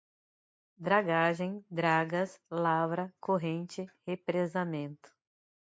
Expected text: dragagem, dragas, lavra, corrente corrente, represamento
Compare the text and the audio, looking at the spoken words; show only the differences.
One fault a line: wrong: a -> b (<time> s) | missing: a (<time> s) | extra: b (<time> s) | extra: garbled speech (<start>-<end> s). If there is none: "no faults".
missing: corrente (3.9 s)